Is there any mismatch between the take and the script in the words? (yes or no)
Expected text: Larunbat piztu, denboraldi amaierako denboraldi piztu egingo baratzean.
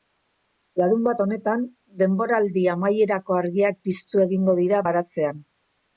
yes